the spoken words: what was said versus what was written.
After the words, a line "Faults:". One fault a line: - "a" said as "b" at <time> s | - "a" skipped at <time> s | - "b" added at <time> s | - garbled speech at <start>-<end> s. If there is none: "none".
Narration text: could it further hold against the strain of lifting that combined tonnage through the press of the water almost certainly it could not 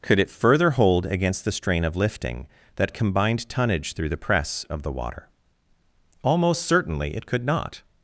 could it further hold against the strain of lifting that combined tonnage through the press of the water almost certainly it could not
Faults:
none